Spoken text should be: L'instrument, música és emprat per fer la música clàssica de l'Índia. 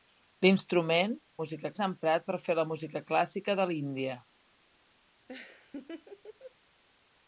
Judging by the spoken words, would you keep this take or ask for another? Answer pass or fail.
pass